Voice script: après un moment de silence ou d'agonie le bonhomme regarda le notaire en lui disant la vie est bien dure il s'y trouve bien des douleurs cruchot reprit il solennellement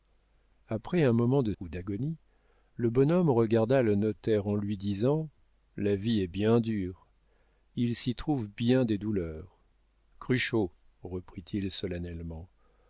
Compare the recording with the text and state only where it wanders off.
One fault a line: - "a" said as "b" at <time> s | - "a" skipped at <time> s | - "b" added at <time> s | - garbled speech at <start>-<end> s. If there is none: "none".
- "silence" skipped at 1.5 s